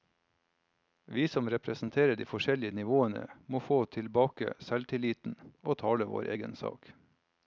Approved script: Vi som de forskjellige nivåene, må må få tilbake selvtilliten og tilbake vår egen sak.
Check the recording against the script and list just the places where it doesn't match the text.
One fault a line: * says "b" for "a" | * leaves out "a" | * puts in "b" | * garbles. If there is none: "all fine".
* puts in "representerer"
* leaves out "må"
* says "tale" for "tilbake"